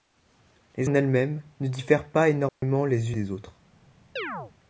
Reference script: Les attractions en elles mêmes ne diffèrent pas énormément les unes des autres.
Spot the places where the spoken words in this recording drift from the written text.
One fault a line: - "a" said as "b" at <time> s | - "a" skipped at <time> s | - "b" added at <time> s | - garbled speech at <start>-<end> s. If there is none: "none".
- "attractions" skipped at 0.9 s
- "unes" skipped at 3.1 s